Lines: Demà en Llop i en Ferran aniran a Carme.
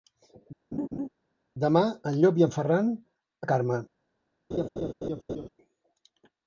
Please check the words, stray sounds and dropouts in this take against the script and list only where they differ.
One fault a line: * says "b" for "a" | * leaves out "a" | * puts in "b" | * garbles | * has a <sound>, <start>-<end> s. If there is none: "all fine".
* has a laugh, 0.7-1.1 s
* leaves out "aniran"
* has a laugh, 4.5-5.5 s